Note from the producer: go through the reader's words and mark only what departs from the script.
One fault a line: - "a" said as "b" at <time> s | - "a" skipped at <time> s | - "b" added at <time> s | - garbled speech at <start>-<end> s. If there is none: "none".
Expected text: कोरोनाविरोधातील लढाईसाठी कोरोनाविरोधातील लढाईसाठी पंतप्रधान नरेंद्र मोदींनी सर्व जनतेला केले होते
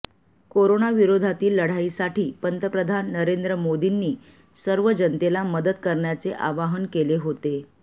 - "कोरोनाविरोधातील लढाईसाठी" skipped at 2.2 s
- "मदत करण्याचे आवाहन" added at 5.5 s